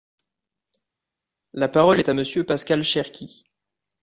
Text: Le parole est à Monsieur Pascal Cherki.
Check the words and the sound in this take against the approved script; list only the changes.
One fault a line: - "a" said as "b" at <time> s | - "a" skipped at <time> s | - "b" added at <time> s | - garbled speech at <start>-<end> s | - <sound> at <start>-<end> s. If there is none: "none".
- "Le" said as "La" at 1.5 s